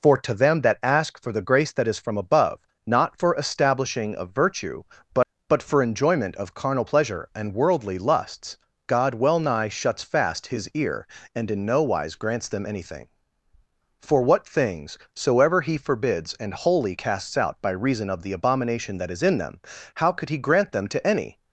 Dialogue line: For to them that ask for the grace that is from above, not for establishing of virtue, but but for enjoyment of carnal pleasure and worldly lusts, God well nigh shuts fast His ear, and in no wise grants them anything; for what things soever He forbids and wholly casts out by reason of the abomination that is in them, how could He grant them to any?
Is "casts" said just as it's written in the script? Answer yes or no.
yes